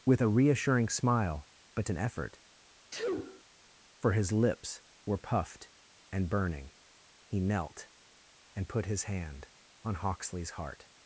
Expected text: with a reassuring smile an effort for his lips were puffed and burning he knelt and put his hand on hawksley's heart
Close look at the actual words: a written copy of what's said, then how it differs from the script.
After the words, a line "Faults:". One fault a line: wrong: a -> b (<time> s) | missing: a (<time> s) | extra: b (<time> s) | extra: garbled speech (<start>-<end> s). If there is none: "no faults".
with a reassuring smile but an effort for his lips were puffed and burning he knelt and put his hand on hawksley's heart
Faults:
extra: but (1.8 s)